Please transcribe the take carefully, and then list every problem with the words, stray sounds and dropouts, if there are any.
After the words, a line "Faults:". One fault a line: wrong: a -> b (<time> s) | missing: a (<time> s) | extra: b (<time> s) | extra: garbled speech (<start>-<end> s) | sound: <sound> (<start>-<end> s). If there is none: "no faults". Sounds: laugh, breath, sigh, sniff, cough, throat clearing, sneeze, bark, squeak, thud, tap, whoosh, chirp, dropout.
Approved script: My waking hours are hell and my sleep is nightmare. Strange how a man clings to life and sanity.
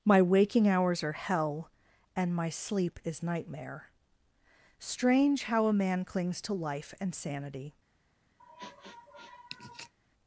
My waking hours are hell and my sleep is nightmare. Strange how a man clings to life and sanity.
Faults:
sound: sniff (8.4-9.9 s)